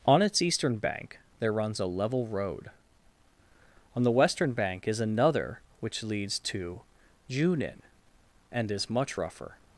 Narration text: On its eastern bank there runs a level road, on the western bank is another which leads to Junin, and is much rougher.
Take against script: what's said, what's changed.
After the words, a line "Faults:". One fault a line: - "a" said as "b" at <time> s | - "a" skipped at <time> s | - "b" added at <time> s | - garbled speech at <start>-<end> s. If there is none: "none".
On its eastern bank there runs a level road, on the western bank is another which leads to Junin, and is much rougher.
Faults:
none